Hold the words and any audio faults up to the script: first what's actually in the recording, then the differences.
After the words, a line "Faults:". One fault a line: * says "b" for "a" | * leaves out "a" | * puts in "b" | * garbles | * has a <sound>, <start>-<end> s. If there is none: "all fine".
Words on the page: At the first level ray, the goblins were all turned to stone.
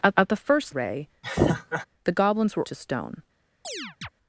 At at the first ray, the goblins were to stone.
Faults:
* puts in "at"
* leaves out "level"
* has a laugh, 1.2-1.9 s
* leaves out "all turned"
* has a chirp, 3.6-4.1 s